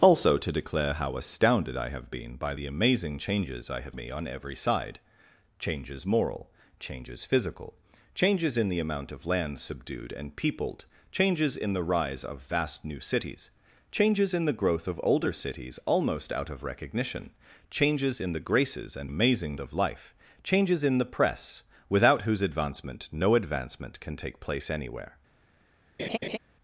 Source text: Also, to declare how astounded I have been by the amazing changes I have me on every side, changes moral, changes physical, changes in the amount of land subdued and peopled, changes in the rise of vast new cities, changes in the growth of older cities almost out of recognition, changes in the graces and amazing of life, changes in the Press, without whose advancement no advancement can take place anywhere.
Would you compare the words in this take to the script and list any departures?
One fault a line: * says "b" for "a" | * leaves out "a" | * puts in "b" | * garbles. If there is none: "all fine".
all fine